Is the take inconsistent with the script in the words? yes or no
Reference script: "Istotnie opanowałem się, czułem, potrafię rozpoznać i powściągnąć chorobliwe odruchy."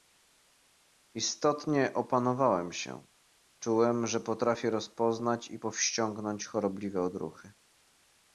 yes